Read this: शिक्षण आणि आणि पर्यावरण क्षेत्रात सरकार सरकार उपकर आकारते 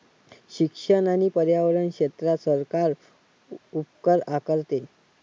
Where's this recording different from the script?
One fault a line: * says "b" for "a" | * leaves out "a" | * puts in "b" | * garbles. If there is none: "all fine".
* leaves out "आणि"
* leaves out "सरकार"